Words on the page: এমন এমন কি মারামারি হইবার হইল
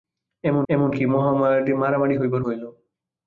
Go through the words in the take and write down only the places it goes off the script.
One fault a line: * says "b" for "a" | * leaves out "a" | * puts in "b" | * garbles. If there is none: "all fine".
all fine